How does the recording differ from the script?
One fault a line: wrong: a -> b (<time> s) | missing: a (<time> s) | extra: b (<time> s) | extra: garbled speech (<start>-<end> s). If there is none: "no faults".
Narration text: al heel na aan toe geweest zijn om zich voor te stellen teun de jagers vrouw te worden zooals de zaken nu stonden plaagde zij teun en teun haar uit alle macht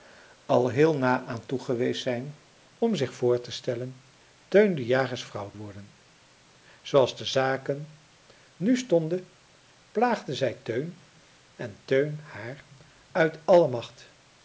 missing: te (5.5 s)